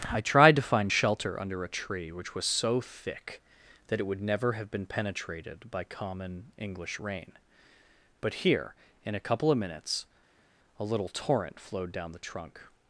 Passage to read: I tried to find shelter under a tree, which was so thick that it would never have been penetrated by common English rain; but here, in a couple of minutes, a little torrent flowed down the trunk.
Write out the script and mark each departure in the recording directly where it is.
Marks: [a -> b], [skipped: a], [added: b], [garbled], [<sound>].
I tried to find shelter under a tree, which was so thick that it would never have been penetrated by common English rain; but here, in a couple of minutes, a little torrent flowed down the trunk.